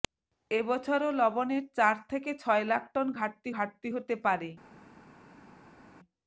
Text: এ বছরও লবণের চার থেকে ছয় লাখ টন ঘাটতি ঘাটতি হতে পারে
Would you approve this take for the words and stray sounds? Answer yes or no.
yes